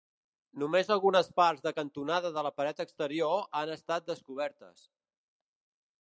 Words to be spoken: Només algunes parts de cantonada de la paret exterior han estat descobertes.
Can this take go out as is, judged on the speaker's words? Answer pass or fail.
pass